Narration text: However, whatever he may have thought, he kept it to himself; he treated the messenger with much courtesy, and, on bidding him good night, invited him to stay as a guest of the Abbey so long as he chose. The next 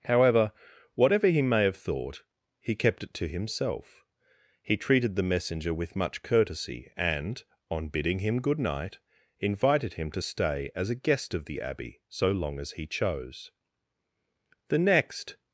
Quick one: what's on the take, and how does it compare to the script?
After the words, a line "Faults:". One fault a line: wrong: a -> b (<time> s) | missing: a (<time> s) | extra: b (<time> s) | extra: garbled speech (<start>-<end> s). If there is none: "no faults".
However, whatever he may have thought, he kept it to himself; he treated the messenger with much courtesy, and, on bidding him good night, invited him to stay as a guest of the Abbey so long as he chose. The next
Faults:
no faults